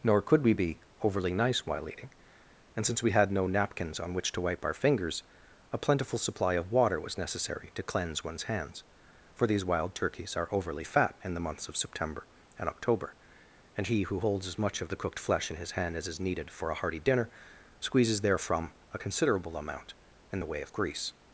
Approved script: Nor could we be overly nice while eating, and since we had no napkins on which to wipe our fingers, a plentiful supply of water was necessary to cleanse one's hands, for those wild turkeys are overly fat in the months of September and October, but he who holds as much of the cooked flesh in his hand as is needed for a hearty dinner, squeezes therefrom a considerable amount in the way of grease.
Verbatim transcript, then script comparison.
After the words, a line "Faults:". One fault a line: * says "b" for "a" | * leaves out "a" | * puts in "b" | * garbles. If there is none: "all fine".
Nor could we be overly nice while eating, and since we had no napkins on which to wipe our fingers, a plentiful supply of water was necessary to cleanse one's hands, for these wild turkeys are overly fat in the months of September and October, and he who holds as much of the cooked flesh in his hand as is needed for a hearty dinner, squeezes therefrom a considerable amount in the way of grease.
Faults:
* says "these" for "those"
* says "and" for "but"